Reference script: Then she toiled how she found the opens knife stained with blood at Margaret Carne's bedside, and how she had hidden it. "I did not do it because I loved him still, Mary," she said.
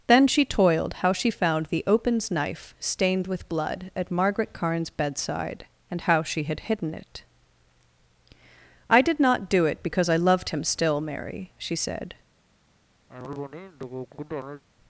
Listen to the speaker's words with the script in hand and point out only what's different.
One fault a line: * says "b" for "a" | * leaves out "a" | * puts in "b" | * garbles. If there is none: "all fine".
all fine